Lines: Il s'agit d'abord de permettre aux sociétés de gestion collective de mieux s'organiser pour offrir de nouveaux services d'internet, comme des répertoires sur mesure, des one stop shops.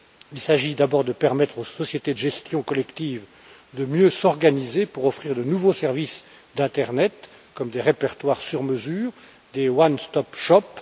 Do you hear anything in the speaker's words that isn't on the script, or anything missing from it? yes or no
no